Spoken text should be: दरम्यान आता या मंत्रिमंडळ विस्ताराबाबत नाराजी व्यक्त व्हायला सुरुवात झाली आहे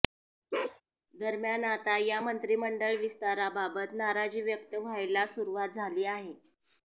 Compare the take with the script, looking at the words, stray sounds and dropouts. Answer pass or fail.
fail